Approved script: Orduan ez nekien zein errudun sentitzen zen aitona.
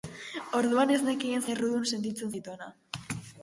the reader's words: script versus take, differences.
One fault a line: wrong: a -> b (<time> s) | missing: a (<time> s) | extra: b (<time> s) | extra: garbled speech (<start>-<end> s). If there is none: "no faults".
missing: zein (1.4 s)
missing: zen (2.3 s)